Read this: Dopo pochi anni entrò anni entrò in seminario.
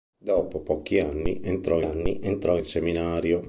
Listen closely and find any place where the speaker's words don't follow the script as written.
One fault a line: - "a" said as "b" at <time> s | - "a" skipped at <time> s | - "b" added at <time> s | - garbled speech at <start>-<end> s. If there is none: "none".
none